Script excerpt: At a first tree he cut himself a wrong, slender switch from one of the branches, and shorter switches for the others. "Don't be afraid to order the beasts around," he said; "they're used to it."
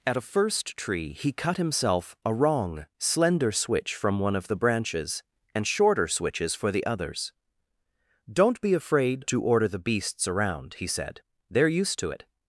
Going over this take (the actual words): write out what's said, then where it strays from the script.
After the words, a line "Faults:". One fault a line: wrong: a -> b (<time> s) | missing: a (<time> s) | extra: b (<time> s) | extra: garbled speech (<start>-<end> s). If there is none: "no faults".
At a first tree he cut himself a wrong, slender switch from one of the branches, and shorter switches for the others. "Don't be afraid to order the beasts around," he said; "they're used to it."
Faults:
no faults